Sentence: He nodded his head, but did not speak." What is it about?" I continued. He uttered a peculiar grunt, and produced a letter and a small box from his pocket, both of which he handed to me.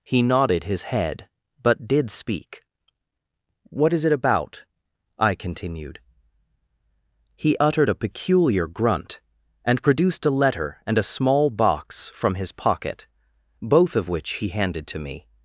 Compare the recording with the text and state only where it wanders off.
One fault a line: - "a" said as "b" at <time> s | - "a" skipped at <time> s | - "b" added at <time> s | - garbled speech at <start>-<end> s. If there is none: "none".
- "not" skipped at 2.1 s